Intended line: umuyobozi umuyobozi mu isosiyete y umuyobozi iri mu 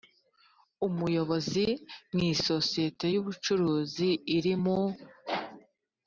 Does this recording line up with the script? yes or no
no